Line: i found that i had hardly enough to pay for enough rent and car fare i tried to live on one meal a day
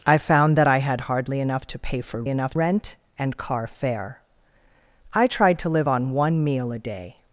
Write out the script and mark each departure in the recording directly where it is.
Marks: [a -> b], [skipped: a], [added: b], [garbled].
i found that i had hardly enough to pay for enough rent and car fare i tried to live on one meal a day